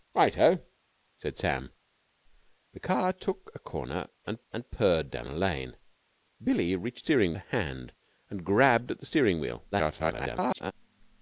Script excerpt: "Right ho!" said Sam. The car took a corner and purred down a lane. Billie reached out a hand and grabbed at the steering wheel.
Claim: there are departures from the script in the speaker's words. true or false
true